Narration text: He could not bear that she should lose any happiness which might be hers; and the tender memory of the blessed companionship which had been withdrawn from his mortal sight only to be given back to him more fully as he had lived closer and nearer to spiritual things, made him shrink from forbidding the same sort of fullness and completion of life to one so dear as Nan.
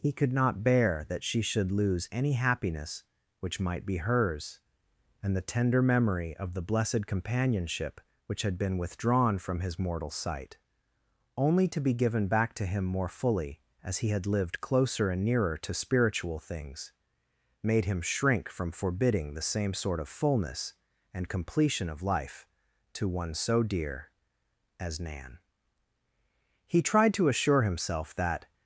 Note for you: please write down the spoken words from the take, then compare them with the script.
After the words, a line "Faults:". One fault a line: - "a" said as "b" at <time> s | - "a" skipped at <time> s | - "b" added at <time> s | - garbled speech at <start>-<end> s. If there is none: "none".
He could not bear that she should lose any happiness which might be hers; and the tender memory of the blessed companionship which had been withdrawn from his mortal sight only to be given back to him more fully as he had lived closer and nearer to spiritual things, made him shrink from forbidding the same sort of fullness and completion of life to one so dear as Nan. He tried to assure himself that
Faults:
- "He tried to assure himself that" added at 26.6 s